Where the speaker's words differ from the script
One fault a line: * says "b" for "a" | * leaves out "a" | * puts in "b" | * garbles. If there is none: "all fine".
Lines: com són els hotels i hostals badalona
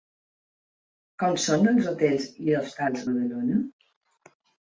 all fine